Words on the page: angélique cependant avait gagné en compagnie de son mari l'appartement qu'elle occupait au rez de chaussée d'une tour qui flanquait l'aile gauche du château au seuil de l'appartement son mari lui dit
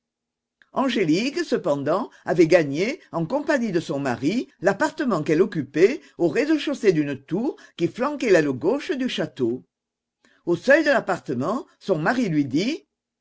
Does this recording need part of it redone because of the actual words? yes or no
no